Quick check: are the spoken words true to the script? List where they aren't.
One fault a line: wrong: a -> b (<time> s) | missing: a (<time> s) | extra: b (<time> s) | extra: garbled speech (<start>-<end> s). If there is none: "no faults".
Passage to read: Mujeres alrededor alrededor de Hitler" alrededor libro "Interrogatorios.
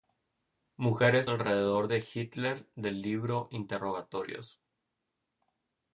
missing: alrededor (1.9 s)
wrong: alrededor -> del (2.8 s)